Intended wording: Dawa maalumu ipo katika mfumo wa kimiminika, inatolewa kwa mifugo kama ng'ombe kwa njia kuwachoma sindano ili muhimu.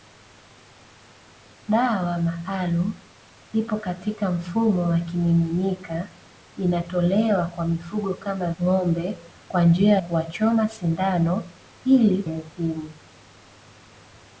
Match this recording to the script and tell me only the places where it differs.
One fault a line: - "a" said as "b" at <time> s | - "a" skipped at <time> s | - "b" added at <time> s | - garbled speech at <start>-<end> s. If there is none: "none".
none